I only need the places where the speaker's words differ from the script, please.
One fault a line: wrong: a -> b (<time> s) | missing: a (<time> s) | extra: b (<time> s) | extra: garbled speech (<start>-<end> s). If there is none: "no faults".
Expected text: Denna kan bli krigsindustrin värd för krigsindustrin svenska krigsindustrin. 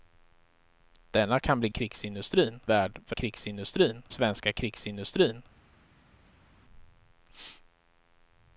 no faults